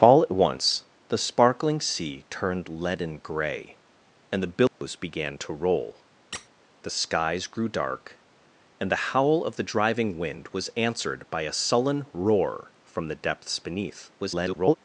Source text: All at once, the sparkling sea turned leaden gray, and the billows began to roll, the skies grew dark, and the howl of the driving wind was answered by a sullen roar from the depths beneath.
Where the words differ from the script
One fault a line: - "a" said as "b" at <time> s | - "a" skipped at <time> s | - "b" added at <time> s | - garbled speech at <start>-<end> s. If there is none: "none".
- garbled speech at 14.2-14.8 s